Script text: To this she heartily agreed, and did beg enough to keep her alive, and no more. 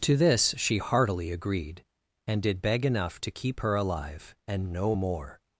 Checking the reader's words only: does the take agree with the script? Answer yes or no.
yes